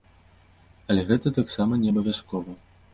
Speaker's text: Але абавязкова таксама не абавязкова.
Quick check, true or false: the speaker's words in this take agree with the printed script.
false